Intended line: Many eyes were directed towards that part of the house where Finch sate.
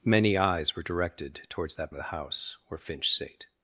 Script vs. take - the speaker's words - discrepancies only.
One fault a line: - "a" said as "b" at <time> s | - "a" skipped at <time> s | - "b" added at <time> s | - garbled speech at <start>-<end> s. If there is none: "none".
- "part" skipped at 1.9 s